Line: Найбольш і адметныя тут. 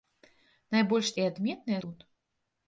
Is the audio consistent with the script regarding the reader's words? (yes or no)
yes